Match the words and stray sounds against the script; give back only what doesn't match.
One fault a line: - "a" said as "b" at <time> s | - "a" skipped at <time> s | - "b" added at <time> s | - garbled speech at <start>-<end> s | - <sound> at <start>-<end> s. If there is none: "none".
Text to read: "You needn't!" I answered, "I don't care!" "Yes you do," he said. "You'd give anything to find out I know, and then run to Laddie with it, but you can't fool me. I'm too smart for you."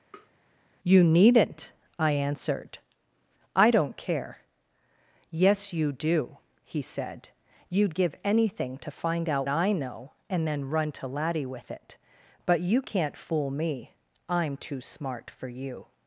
- tap at 0.1-0.3 s